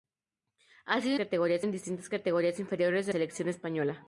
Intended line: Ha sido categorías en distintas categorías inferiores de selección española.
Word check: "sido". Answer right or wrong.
right